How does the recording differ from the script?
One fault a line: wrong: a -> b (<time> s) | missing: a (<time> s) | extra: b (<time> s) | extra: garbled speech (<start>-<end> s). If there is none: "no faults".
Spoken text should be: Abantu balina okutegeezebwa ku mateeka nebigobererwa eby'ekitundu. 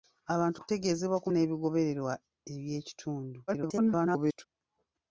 missing: balina (0.6 s)
missing: mateeka (1.3 s)
extra: garbled speech (3.5-4.5 s)